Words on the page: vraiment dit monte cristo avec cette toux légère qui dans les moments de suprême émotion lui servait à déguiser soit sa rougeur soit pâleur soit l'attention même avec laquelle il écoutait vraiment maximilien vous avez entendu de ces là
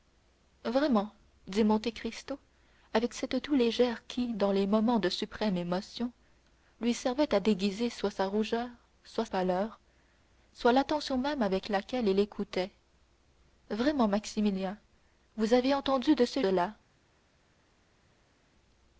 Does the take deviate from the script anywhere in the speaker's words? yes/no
no